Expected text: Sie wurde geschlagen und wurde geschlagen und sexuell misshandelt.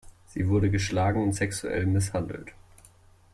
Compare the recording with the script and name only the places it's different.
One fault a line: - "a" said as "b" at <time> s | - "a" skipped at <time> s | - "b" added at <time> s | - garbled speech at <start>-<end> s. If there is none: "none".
- "wurde geschlagen und" skipped at 1.3 s